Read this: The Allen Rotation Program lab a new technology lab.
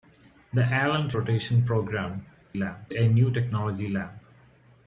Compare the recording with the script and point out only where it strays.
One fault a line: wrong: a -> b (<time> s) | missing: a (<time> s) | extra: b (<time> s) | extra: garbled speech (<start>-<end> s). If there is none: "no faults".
no faults